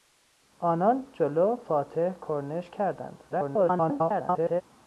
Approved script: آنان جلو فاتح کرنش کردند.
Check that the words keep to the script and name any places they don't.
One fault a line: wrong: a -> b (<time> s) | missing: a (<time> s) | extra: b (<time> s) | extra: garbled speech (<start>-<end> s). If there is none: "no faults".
extra: garbled speech (3.3-4.6 s)